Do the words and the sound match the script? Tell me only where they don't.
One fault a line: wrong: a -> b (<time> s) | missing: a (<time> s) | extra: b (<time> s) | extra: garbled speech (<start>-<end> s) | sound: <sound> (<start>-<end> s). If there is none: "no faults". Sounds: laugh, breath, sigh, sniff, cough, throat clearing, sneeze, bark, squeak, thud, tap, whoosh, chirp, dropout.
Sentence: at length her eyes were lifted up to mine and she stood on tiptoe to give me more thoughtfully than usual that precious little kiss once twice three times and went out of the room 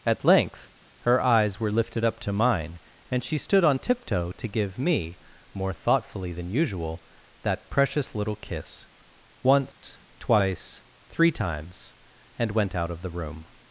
sound: dropout (9.7-9.8 s)